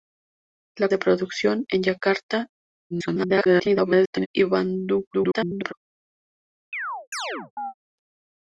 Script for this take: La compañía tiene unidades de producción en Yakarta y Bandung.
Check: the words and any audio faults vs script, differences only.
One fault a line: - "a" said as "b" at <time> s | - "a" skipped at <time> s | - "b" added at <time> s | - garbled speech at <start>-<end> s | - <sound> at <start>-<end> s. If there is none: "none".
- "compañía tiene unidades" skipped at 0.9 s
- garbled speech at 2.9-4.3 s
- garbled speech at 5.1-5.7 s
- chirp at 6.7-7.7 s